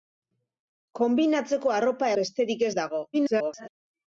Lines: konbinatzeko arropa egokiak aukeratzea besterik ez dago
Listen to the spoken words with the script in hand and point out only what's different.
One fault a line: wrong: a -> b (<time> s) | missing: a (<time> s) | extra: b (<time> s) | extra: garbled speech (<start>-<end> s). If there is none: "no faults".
missing: egokiak aukeratzea (2.1 s)
extra: garbled speech (3.1-3.7 s)